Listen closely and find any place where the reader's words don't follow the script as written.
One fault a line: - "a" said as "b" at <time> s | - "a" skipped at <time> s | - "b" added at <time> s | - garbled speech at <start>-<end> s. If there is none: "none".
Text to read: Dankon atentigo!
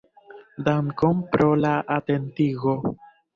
- "pro la" added at 1.4 s